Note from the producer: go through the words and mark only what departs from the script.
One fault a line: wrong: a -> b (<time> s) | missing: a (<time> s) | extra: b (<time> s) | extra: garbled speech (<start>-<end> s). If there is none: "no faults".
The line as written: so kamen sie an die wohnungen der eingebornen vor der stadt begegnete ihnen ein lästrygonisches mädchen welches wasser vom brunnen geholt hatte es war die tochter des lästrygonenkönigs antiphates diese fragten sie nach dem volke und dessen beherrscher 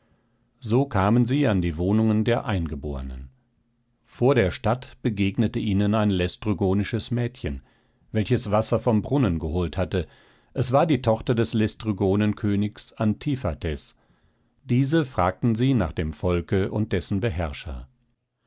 no faults